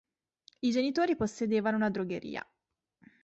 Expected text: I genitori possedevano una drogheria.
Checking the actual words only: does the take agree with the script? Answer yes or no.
yes